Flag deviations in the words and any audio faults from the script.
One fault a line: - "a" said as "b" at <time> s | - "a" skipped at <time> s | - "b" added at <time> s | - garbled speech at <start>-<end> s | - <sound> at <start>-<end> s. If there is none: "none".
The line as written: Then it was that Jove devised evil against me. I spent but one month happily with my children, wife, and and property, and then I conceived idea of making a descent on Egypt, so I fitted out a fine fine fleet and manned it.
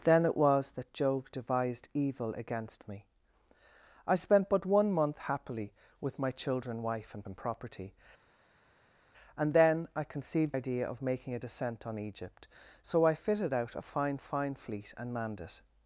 none